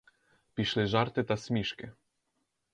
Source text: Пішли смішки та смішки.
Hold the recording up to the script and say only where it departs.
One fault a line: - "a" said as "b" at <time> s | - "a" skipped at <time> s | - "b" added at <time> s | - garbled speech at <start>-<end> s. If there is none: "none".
- "смішки" said as "жарти" at 0.8 s